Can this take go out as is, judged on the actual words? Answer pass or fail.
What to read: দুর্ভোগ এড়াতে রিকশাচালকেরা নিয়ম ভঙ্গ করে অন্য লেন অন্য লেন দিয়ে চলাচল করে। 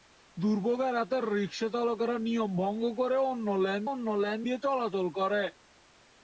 pass